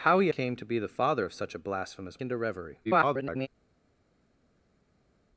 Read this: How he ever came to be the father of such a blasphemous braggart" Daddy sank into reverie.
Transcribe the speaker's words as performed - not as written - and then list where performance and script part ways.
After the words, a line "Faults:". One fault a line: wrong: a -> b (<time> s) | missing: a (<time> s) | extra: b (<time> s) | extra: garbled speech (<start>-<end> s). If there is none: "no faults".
How he came to be the father of such a blasphemous into reverie. [garbled]
Faults:
missing: ever (0.3 s)
missing: braggart Daddy sank (2.2 s)
extra: garbled speech (2.8-3.5 s)